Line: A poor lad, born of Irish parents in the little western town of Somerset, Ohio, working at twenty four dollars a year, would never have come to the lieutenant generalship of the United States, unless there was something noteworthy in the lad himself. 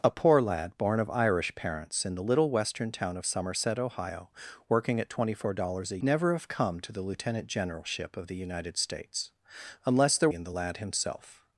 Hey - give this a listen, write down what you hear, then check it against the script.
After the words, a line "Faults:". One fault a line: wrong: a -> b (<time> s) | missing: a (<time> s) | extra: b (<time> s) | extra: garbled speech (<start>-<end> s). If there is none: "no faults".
A poor lad, born of Irish parents in the little western town of Somerset, Ohio, working at twenty four dollars a never have come to the lieutenant generalship of the United States, unless there in the lad himself.
Faults:
missing: year would (6.0 s)
missing: was something noteworthy (10.3 s)